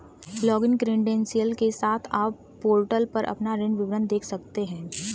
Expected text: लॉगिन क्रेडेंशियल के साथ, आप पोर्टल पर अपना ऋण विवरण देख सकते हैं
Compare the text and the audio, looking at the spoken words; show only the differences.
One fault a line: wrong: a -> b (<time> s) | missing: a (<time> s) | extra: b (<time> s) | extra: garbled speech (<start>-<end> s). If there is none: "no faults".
no faults